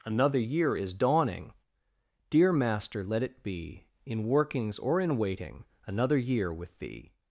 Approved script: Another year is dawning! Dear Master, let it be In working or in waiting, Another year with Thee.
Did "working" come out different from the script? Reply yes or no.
yes